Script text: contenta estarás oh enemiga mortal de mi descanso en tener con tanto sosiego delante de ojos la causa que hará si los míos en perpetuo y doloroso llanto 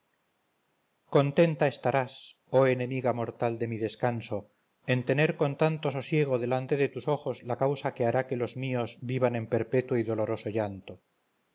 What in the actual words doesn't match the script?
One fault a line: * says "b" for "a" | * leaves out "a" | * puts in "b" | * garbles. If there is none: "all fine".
* puts in "tus"
* says "que" for "si"
* puts in "vivan"